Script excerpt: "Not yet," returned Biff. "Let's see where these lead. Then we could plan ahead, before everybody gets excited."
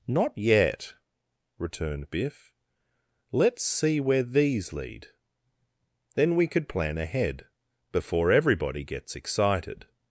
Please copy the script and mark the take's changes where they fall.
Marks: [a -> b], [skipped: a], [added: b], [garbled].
"Not yet," returned Biff. "Let's see where these lead. Then we could plan ahead, before everybody gets excited."